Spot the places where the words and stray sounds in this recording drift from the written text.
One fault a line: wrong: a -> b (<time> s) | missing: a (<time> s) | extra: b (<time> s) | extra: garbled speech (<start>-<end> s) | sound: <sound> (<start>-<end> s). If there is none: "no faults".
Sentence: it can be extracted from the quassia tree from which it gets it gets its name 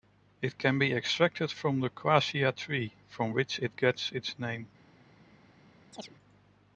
missing: it gets (4.1 s)
sound: chirp (5.9-6.2 s)